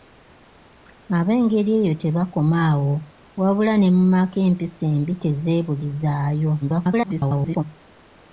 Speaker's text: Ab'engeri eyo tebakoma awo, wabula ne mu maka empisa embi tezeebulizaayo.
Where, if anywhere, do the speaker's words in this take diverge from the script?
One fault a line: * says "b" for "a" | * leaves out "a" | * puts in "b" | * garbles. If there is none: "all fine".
* garbles